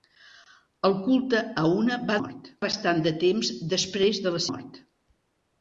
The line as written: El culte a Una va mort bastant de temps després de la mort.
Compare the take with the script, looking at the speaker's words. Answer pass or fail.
pass